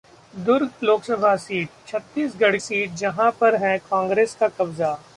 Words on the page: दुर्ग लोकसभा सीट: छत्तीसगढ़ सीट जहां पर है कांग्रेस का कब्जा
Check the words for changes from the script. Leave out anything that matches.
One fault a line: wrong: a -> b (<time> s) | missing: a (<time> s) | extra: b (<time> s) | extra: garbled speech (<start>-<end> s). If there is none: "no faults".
no faults